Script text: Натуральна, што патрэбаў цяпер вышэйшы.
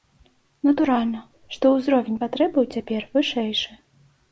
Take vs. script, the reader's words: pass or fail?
fail